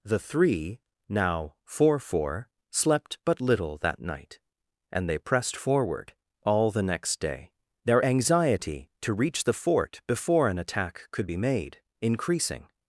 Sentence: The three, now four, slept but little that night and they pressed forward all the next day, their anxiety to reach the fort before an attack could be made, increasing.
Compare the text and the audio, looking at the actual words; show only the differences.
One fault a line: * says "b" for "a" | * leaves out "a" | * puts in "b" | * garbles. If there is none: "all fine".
* puts in "four"